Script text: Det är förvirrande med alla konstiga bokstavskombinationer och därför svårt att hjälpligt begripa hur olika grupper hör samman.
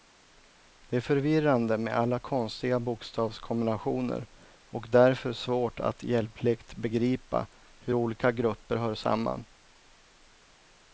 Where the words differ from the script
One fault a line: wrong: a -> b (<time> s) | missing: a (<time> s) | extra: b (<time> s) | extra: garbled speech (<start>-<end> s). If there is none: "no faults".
no faults